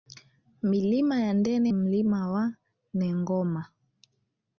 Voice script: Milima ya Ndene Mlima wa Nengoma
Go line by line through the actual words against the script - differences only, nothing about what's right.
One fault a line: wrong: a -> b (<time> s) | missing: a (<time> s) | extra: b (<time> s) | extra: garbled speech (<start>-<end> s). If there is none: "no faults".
no faults